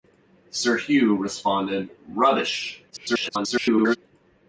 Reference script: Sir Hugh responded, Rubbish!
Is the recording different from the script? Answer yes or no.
yes